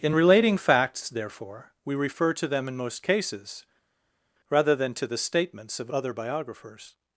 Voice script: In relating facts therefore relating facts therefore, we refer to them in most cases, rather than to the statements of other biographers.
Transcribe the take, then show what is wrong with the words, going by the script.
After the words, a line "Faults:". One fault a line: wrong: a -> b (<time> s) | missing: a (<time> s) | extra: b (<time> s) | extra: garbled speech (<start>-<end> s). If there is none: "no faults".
In relating facts therefore, we refer to them in most cases, rather than to the statements of other biographers.
Faults:
missing: relating facts therefore (1.7 s)